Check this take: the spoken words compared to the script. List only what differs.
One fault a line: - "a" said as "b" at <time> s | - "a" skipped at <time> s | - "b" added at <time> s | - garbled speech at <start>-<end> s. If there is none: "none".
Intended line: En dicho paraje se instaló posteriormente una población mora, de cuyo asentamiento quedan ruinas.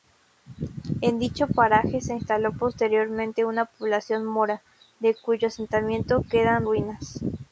none